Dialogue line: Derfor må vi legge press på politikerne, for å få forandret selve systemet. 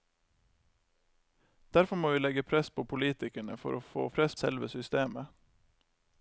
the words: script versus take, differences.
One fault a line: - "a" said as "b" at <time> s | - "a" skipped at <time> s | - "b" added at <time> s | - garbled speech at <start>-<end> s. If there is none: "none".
- "forandret" said as "press" at 4.1 s